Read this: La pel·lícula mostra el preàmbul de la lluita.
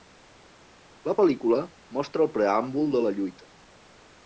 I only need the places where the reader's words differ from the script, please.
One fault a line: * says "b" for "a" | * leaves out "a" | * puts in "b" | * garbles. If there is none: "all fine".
all fine